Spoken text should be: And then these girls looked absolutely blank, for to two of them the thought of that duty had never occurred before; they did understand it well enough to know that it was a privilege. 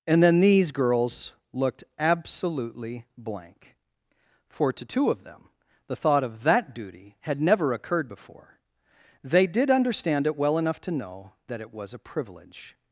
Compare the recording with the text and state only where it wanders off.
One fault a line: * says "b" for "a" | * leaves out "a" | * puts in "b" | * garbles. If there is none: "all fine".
all fine